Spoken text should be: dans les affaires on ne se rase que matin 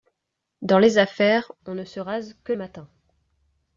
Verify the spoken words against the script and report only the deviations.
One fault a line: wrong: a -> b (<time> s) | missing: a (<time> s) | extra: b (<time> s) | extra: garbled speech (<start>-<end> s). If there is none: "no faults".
no faults